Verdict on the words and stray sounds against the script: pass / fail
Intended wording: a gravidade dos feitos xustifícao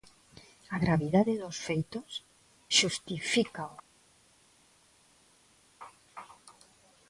pass